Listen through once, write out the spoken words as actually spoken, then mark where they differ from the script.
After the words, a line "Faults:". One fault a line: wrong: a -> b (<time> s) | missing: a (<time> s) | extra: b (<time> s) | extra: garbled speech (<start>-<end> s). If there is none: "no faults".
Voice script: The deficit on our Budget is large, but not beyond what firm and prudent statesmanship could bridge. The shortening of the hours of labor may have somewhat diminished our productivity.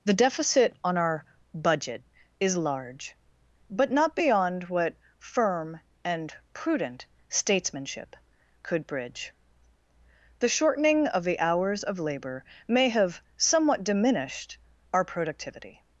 The deficit on our Budget is large, but not beyond what firm and prudent statesmanship could bridge. The shortening of the hours of labor may have somewhat diminished our productivity.
Faults:
no faults